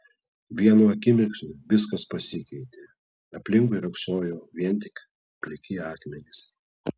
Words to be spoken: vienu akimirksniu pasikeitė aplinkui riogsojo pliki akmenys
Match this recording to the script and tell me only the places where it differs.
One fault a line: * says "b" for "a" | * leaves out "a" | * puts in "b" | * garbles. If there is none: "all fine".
* puts in "viskas"
* puts in "vien tik"